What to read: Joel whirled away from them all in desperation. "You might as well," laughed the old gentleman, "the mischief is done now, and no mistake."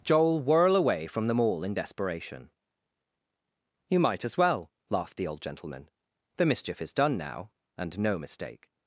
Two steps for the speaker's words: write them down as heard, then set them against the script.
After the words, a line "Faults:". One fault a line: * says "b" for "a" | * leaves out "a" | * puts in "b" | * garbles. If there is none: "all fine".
Joel whirl away from them all in desperation. "You might as well," laughed the old gentleman, "the mischief is done now, and no mistake."
Faults:
* says "whirl" for "whirled"